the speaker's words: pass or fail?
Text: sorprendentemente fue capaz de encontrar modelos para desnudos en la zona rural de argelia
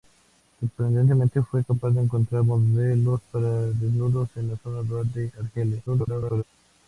fail